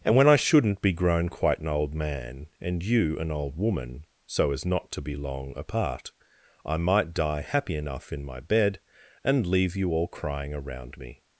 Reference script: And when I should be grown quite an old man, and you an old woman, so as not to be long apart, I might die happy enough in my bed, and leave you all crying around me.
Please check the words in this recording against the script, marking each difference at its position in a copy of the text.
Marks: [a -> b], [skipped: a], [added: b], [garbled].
And when I [should -> shouldn't] be grown quite an old man, and you an old woman, so as not to be long apart, I might die happy enough in my bed, and leave you all crying around me.